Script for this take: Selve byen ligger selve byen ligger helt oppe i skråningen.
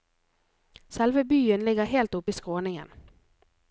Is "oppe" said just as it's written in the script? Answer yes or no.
yes